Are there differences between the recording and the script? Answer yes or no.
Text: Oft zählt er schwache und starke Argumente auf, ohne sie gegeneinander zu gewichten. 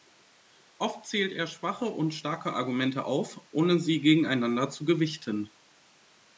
no